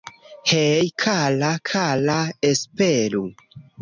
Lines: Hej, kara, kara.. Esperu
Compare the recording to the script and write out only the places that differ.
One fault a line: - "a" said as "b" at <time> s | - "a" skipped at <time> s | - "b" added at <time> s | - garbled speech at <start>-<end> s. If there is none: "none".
none